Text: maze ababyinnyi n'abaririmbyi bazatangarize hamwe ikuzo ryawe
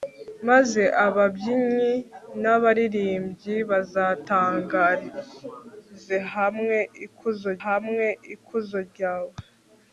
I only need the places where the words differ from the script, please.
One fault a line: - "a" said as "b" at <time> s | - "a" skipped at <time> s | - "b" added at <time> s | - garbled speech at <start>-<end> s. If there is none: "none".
- "hamwe ikuzo" added at 7.6 s